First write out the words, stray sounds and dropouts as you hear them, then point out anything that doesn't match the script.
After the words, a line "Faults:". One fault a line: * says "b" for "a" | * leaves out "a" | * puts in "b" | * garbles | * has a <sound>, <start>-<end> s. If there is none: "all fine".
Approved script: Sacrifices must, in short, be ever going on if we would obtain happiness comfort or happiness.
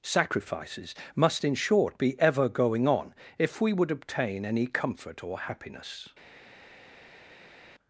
Sacrifices must, in short, be ever going on if we would obtain any comfort or happiness.
Faults:
* says "any" for "happiness"